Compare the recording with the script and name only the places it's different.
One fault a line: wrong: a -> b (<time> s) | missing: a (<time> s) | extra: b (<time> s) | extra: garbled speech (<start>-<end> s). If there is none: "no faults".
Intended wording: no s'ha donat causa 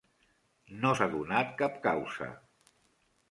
extra: cap (1.6 s)